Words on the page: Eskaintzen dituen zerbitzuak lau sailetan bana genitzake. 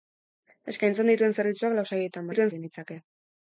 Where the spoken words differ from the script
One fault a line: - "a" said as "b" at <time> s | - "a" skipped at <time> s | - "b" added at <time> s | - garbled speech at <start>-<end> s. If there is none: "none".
- "bana" said as "dituen" at 2.3 s